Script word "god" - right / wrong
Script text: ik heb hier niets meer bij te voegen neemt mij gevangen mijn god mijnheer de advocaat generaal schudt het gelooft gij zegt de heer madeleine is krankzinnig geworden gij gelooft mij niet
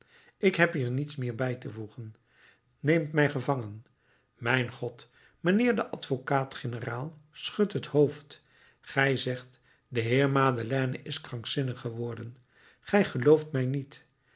right